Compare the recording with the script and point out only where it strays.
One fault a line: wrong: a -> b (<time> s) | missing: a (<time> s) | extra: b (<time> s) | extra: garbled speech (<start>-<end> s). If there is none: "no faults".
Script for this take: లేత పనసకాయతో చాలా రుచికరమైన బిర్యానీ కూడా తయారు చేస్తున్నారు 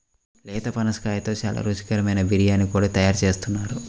no faults